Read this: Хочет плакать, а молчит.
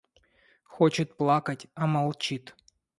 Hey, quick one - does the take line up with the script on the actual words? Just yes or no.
yes